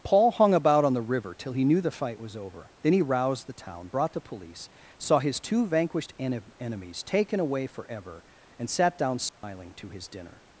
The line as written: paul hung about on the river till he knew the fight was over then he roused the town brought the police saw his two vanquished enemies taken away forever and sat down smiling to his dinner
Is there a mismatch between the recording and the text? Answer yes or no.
yes